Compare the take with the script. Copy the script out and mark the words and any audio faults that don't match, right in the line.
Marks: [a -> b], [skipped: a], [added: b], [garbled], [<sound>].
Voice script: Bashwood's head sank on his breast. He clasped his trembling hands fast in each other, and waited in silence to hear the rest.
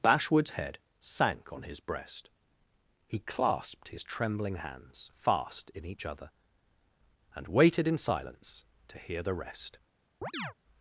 Bashwood's head sank on his breast. He clasped his trembling hands fast in each other, and waited in silence to hear the rest. [chirp]